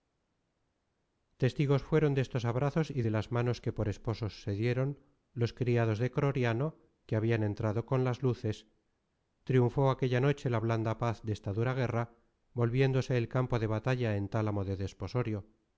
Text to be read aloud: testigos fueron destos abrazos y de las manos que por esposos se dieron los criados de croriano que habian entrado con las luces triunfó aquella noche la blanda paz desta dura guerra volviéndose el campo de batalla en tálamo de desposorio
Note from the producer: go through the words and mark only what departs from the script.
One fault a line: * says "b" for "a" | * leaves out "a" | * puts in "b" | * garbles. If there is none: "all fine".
all fine